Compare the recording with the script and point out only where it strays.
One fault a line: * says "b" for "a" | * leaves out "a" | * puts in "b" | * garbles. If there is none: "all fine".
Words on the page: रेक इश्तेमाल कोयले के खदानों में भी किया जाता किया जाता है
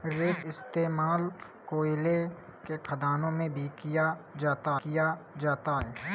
all fine